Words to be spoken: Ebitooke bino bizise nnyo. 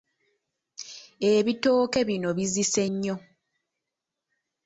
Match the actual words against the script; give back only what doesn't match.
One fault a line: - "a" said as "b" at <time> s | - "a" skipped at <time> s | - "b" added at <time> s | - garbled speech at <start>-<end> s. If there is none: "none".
none